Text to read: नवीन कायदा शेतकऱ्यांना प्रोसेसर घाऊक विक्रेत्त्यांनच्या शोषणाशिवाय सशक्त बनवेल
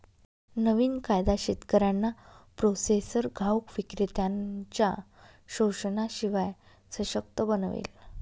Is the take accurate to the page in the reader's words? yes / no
yes